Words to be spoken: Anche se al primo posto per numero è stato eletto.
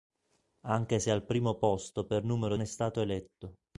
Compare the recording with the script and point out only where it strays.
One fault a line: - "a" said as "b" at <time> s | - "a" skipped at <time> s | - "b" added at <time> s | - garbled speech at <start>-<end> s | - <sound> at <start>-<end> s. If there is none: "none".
none